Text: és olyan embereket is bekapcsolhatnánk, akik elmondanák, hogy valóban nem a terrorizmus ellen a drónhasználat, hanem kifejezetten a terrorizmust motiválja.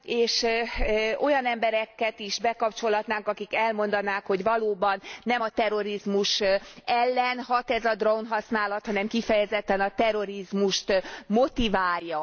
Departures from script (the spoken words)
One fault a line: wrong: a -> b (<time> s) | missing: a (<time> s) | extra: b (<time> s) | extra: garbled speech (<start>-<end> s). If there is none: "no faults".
extra: hat ez (7.4 s)